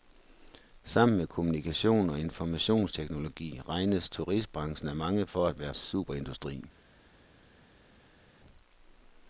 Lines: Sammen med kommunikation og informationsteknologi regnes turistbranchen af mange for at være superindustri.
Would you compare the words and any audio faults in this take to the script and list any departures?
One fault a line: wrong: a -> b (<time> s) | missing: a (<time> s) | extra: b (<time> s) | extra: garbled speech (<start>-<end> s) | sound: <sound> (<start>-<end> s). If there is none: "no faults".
no faults